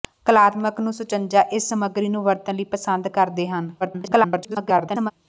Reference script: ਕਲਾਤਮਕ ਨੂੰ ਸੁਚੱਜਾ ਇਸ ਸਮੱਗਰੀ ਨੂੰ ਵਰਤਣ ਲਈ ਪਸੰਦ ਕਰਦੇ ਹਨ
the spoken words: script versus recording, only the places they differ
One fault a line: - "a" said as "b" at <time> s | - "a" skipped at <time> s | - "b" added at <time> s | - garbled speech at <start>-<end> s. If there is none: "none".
- garbled speech at 3.8-5.1 s